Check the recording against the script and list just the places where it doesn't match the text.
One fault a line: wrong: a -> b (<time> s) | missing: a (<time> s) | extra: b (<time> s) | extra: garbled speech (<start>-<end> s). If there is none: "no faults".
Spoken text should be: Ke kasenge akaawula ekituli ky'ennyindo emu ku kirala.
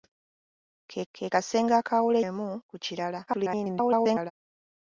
extra: ke (1.1 s)
missing: ekituli ky'ennyindo (2.2 s)
extra: garbled speech (3.3-4.3 s)